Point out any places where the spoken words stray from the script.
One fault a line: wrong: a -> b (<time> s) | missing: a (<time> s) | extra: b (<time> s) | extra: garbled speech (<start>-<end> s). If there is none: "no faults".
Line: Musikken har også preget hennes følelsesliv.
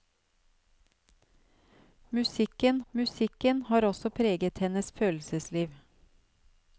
extra: musikken (2.9 s)